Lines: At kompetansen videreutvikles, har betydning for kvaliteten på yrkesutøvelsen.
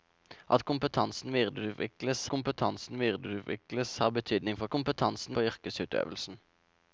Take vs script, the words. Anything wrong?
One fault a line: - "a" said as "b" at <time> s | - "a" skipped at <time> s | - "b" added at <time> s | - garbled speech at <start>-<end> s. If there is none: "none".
- "kompetansen videreutvikles" added at 2.3 s
- "kvaliteten" said as "kompetansen" at 4.7 s